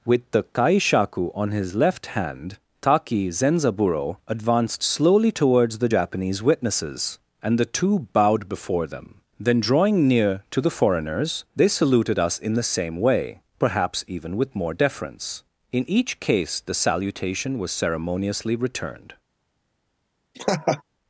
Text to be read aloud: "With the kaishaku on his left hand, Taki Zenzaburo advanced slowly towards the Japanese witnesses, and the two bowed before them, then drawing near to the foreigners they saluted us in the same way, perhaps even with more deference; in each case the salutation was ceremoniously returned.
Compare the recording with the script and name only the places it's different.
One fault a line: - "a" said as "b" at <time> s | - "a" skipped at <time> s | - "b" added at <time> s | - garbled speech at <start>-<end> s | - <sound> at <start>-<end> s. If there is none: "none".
- laugh at 20.3-20.8 s